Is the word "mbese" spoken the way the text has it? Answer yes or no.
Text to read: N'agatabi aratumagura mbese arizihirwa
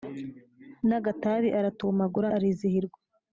no